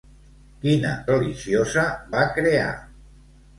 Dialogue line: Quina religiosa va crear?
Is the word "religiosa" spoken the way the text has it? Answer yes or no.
yes